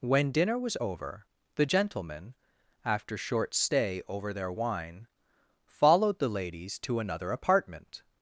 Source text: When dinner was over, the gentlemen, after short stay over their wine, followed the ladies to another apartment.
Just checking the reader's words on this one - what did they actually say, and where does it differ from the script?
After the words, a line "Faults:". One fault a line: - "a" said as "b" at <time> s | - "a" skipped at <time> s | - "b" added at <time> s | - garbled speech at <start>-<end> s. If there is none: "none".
When dinner was over, the gentlemen, after short stay over their wine, followed the ladies to another apartment.
Faults:
none